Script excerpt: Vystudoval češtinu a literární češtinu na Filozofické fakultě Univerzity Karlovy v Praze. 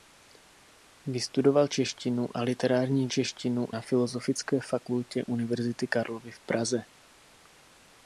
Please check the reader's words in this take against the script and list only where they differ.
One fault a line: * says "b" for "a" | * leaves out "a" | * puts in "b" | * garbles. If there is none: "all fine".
all fine